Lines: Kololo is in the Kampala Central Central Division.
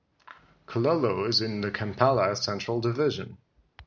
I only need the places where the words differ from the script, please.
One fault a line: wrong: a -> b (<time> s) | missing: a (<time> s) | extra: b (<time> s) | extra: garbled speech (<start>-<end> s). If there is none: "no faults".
missing: Central (2.8 s)